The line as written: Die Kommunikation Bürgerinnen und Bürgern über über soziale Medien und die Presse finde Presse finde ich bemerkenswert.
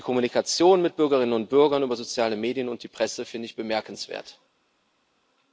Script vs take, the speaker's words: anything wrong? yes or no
yes